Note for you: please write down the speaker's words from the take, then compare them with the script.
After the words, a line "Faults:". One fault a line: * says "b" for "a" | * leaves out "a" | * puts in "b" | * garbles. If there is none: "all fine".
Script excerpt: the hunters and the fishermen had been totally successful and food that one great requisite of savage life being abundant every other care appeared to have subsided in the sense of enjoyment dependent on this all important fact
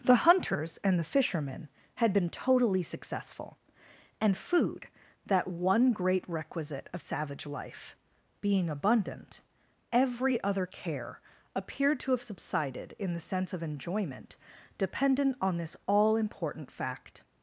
the hunters and the fishermen had been totally successful and food that one great requisite of savage life being abundant every other care appeared to have subsided in the sense of enjoyment dependent on this all important fact
Faults:
all fine